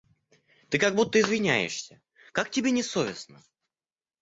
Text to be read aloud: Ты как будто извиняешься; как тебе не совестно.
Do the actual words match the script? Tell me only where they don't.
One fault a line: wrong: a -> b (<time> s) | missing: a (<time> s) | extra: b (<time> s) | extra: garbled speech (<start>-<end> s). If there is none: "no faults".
no faults